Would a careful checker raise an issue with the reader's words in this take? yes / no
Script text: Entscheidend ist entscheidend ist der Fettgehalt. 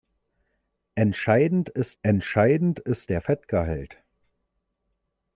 no